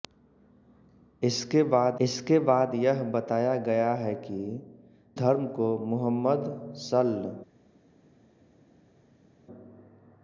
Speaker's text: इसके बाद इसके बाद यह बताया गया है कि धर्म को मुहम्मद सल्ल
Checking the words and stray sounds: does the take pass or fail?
pass